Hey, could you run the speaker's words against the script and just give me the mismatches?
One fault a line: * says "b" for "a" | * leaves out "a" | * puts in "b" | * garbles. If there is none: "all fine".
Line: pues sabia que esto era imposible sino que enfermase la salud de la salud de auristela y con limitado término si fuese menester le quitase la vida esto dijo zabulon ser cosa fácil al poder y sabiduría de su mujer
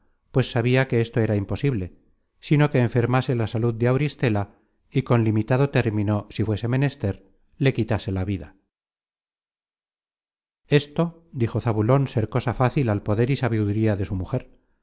* leaves out "la salud de"